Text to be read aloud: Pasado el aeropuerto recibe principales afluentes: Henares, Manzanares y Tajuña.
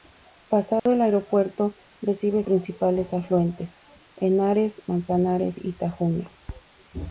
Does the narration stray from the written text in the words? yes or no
no